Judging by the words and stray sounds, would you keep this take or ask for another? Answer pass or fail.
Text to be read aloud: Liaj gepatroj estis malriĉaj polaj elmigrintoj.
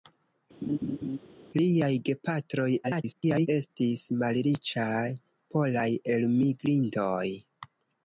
fail